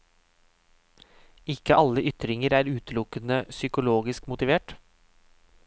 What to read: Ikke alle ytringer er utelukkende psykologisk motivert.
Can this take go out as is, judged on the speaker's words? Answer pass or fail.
pass